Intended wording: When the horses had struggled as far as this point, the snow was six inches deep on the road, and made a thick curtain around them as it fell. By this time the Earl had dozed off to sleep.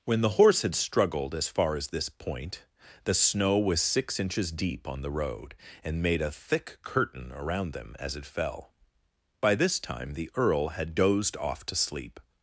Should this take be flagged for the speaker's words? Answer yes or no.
yes